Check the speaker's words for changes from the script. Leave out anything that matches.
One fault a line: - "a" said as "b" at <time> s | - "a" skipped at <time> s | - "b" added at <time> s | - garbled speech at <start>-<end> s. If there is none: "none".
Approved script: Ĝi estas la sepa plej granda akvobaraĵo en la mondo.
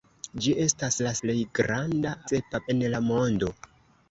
- "sepa" skipped at 1.1 s
- "akvobaraĵo" said as "sepa" at 2.3 s